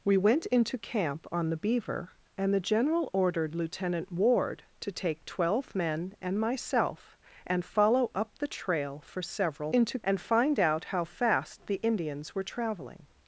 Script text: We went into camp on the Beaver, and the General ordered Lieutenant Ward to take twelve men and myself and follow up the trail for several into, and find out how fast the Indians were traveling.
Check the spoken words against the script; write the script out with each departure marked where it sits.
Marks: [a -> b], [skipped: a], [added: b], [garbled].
We went into camp on the Beaver, and the General ordered Lieutenant Ward to take twelve men and myself and follow up the trail for several into, and find out how fast the Indians were traveling.